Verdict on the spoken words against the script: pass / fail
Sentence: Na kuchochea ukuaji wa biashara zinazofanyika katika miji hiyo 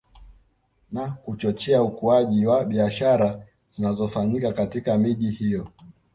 pass